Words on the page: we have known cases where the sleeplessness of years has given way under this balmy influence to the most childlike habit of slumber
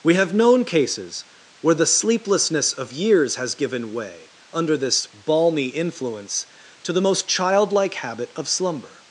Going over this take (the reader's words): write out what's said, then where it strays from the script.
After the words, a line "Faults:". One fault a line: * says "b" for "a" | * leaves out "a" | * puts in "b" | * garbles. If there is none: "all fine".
we have known cases where the sleeplessness of years has given way under this balmy influence to the most childlike habit of slumber
Faults:
all fine